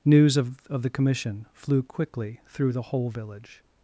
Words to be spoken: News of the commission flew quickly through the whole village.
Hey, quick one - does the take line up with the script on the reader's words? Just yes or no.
no